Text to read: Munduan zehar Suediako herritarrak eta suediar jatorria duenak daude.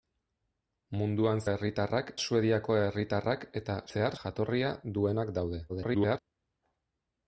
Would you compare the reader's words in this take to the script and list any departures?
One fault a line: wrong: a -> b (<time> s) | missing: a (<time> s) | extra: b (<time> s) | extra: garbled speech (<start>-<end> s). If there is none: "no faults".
wrong: zehar -> herritarrak (1.4 s)
wrong: suediar -> zehar (3.9 s)
extra: garbled speech (5.7-6.2 s)